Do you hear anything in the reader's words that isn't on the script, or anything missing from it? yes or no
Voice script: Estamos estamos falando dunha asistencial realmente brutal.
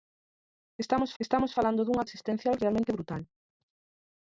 no